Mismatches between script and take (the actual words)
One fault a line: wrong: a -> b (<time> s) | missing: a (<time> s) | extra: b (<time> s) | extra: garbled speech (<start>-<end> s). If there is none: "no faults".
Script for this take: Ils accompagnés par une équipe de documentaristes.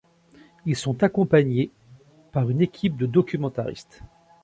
extra: sont (0.8 s)